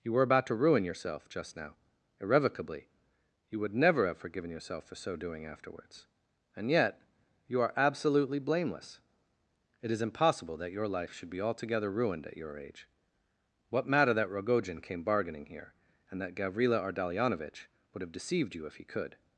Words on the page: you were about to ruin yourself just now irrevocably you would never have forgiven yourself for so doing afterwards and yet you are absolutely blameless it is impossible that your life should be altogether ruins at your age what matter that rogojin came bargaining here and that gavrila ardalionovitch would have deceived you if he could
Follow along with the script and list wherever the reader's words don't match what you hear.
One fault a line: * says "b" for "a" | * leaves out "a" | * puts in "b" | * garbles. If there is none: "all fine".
* says "ruined" for "ruins"